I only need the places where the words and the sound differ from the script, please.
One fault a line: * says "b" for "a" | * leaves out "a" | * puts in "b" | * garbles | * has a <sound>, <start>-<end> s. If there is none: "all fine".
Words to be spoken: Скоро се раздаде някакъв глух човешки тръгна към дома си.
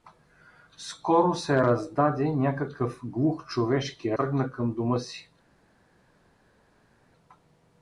all fine